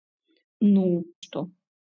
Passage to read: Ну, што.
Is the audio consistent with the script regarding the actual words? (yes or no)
yes